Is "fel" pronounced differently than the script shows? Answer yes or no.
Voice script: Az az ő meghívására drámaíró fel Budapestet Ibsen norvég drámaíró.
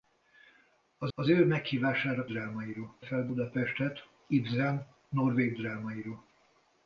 no